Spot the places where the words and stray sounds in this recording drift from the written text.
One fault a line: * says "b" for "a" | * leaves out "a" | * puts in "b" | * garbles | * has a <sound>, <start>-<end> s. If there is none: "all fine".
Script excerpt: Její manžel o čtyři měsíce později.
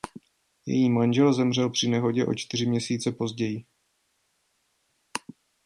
* puts in "zemřel při nehodě"